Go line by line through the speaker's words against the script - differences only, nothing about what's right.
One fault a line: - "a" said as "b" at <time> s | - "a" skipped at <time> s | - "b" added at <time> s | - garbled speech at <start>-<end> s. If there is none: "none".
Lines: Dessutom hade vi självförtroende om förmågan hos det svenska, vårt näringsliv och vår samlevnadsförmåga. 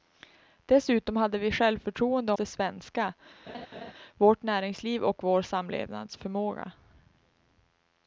- "om förmågan hos" skipped at 2.3 s